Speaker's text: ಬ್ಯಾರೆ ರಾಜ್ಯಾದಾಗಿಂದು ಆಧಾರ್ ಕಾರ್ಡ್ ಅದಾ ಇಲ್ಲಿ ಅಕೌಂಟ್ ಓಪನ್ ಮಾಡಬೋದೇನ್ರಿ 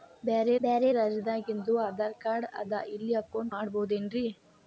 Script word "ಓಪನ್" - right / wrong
wrong